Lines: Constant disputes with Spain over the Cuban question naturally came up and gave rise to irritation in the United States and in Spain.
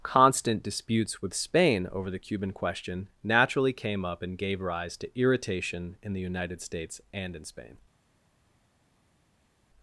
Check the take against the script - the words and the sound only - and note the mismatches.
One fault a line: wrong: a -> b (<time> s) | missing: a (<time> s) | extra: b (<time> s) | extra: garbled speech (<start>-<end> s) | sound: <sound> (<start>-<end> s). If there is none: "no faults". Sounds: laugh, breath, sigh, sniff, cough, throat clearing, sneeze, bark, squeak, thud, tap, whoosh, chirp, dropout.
no faults